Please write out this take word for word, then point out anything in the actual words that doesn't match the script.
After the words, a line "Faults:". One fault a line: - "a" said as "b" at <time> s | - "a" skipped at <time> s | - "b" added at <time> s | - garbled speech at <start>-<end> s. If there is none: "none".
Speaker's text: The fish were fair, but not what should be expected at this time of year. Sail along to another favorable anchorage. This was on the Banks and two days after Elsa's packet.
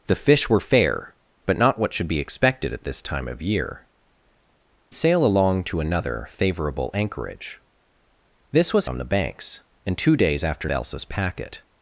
The fish were fair, but not what should be expected at this time of year. Sail along to another favorable anchorage. This was on the Banks and two days after Elsa's packet.
Faults:
none